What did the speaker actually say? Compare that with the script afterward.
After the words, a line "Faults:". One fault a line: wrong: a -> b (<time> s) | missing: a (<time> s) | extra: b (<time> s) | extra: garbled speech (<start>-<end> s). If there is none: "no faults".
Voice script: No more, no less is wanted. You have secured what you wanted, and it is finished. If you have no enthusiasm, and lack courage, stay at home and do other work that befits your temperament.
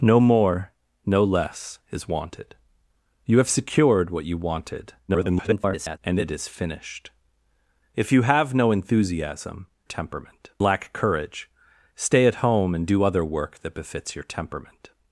No more, no less is wanted. You have secured what you wanted, [garbled] and it is finished. If you have no enthusiasm, temperament lack courage, stay at home and do other work that befits your temperament.
Faults:
extra: garbled speech (5.1-6.0 s)
wrong: and -> temperament (9.8 s)